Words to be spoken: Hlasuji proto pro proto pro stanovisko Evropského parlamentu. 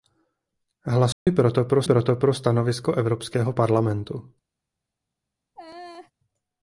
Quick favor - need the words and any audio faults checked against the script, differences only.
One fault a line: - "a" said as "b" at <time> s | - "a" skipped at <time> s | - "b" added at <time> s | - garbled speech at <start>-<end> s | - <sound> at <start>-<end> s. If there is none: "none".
- dropout at 1.1-1.3 s
- laugh at 5.5-6.1 s